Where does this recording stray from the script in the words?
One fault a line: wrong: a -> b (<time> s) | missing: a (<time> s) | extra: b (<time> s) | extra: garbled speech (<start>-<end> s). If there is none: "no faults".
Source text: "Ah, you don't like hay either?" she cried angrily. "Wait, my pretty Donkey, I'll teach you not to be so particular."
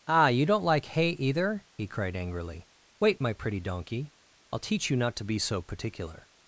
wrong: she -> he (1.8 s)